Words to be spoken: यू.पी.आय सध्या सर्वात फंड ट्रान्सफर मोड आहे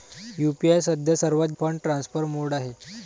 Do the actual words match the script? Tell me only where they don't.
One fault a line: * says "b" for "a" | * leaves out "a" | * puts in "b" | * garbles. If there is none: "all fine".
all fine